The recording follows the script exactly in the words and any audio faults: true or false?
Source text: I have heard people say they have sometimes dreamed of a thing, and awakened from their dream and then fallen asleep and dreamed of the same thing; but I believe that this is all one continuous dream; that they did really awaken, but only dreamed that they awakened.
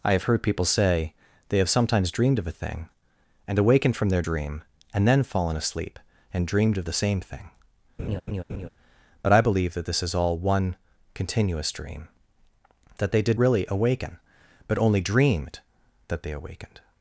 false